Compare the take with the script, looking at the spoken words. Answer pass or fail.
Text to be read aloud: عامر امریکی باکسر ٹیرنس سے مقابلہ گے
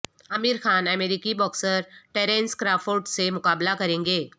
fail